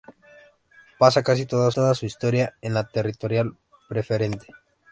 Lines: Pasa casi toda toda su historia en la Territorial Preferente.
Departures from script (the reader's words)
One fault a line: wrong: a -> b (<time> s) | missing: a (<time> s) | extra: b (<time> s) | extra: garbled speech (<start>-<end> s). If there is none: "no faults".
no faults